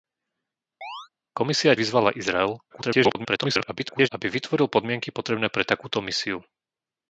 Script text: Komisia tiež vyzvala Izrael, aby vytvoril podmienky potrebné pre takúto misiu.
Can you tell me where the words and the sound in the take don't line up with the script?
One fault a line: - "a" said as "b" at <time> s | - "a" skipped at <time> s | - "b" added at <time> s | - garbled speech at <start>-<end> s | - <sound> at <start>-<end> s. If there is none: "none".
- chirp at 0.8-1.1 s
- "tiež" skipped at 1.8 s
- garbled speech at 2.7-4.1 s